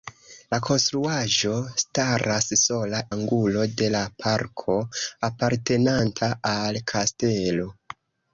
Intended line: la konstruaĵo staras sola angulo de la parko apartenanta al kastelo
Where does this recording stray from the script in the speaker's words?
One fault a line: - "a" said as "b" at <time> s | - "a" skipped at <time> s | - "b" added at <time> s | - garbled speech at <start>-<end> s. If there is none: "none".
none